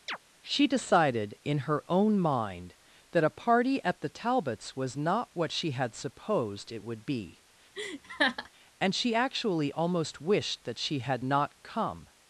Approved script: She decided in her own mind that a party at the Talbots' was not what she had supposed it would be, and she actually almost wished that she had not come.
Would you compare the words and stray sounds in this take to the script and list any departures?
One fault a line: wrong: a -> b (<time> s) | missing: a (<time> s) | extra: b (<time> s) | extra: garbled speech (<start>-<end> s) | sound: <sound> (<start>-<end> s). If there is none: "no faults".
sound: chirp (0.1-0.2 s)
sound: laugh (7.7-8.5 s)